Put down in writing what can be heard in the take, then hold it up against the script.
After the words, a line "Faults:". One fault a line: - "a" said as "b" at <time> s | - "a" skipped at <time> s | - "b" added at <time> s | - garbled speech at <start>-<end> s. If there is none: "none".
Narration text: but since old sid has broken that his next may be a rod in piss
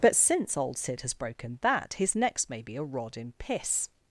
but since old sid has broken that his next may be a rod in piss
Faults:
none